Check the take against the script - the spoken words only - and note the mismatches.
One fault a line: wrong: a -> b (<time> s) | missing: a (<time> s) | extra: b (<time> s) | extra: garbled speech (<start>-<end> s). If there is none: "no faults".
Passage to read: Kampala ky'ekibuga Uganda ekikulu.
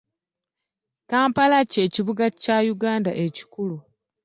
extra: kya (2.4 s)